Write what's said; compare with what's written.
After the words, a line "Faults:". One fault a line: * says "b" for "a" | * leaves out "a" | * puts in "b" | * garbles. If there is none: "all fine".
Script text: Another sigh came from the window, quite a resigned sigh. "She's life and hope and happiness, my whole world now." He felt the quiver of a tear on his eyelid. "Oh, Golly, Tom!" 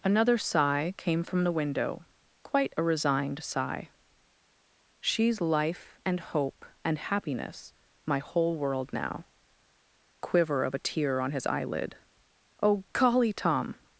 Another sigh came from the window, quite a resigned sigh. "She's life and hope and happiness, my whole world now." Quiver of a tear on his eyelid. "Oh, Golly, Tom!"
Faults:
* leaves out "He felt the"